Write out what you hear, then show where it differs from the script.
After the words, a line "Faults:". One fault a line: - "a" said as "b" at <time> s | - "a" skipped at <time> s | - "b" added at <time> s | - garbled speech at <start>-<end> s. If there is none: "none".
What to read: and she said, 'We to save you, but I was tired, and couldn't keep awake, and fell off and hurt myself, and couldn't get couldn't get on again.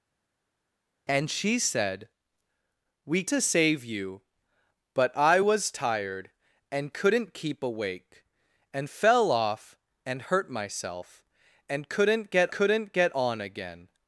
and she said, 'We to save you, but I was tired, and couldn't keep awake, and fell off and hurt myself, and couldn't get couldn't get on again.
Faults:
none